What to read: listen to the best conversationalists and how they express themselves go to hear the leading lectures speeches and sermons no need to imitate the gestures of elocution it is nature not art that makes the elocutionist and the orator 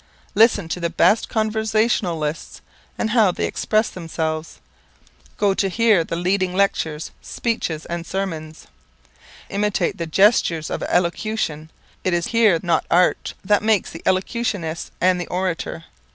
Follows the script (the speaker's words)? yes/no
no